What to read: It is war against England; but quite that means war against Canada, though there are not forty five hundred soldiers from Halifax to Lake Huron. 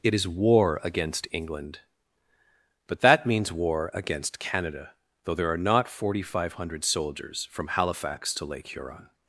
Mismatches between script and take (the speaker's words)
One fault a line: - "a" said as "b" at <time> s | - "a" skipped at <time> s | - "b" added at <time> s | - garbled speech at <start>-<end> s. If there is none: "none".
- "quite" skipped at 3.0 s